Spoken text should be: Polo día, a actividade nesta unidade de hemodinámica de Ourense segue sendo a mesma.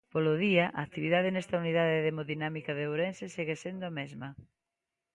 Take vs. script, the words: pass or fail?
pass